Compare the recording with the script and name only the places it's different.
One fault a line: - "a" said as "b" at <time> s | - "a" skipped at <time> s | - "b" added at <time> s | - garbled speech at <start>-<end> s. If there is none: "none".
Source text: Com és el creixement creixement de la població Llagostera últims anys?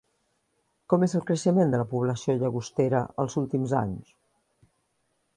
- "creixement" skipped at 1.8 s
- "els" added at 3.3 s